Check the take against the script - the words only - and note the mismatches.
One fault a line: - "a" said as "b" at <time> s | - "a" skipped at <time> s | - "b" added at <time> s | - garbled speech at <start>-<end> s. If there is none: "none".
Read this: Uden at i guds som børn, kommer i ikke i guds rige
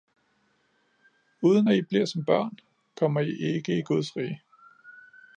- "guds" said as "bliver" at 1.8 s